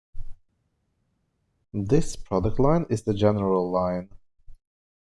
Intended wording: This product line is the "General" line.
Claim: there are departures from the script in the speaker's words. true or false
false